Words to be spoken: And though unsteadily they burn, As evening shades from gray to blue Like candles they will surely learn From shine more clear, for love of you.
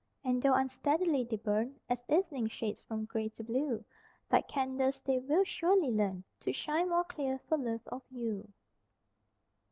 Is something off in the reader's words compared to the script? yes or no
yes